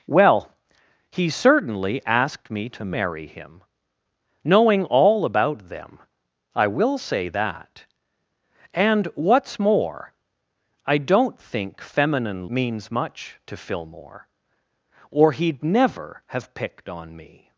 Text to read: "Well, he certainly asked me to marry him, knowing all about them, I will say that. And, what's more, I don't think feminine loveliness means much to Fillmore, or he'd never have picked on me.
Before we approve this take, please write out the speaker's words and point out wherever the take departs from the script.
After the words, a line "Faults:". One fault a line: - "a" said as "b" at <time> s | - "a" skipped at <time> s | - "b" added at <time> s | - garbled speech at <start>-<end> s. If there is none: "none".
"Well, he certainly asked me to marry him, knowing all about them, I will say that. And, what's more, I don't think feminine means much to Fillmore, or he'd never have picked on me.
Faults:
- "loveliness" skipped at 12.5 s